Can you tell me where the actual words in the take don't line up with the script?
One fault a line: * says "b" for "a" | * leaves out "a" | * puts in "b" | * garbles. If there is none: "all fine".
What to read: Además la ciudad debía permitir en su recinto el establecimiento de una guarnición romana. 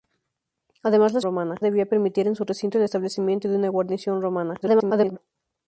* says "romana" for "ciudad"
* garbles